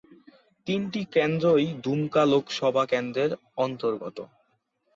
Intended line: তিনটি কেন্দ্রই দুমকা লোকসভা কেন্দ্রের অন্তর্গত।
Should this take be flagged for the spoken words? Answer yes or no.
no